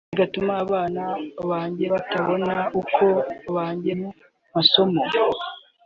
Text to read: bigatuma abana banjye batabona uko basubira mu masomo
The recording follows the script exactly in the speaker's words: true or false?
false